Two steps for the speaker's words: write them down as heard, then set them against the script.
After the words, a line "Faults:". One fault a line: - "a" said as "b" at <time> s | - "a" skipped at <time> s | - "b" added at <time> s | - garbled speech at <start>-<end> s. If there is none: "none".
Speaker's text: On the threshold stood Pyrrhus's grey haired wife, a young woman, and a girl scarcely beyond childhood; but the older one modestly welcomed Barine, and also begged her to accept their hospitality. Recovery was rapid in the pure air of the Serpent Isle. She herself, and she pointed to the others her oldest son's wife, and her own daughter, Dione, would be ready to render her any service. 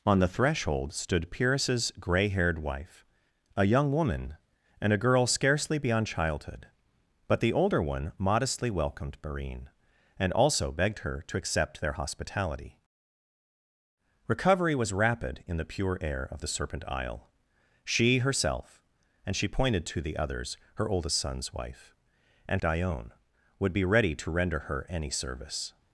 On the threshold stood Pyrrhus's grey haired wife, a young woman, and a girl scarcely beyond childhood; but the older one modestly welcomed Barine, and also begged her to accept their hospitality. Recovery was rapid in the pure air of the Serpent Isle. She herself, and she pointed to the others her oldest son's wife, and Dione, would be ready to render her any service.
Faults:
- "her own daughter" skipped at 22.6 s